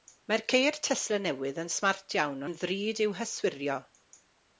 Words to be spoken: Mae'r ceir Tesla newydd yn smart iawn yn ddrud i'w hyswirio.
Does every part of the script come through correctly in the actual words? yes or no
yes